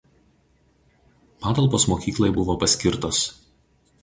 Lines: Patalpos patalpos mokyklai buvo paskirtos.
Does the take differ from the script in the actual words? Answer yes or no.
yes